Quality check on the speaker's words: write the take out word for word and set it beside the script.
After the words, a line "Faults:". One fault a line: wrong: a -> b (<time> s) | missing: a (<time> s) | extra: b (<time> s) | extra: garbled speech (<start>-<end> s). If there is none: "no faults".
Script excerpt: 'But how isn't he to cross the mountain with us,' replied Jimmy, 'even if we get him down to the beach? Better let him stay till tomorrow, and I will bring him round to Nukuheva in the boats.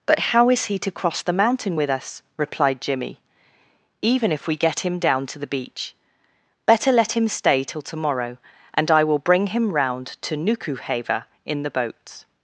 'But how is he to cross the mountain with us,' replied Jimmy, 'even if we get him down to the beach? Better let him stay till tomorrow, and I will bring him round to Nukuheva in the boats.
Faults:
wrong: isn't -> is (0.5 s)